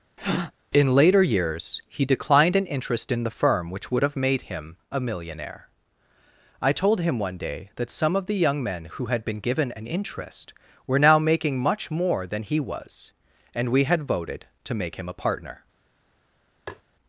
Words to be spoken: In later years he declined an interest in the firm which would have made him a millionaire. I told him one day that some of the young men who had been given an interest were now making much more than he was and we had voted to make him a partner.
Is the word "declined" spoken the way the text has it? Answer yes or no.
yes